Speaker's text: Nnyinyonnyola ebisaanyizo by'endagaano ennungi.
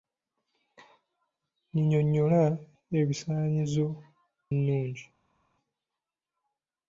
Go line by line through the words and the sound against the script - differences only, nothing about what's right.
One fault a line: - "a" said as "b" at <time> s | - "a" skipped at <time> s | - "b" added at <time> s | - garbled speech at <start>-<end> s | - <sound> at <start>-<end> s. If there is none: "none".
- "by'endagaano" skipped at 3.9 s